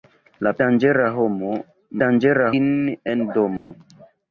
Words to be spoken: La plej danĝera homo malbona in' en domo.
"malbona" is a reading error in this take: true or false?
true